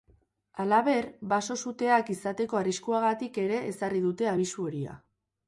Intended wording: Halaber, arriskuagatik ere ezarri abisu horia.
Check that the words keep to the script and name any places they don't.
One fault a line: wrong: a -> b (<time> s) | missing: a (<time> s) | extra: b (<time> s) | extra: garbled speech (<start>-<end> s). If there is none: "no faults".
extra: baso suteak izateko (1.3 s)
extra: dute (4.1 s)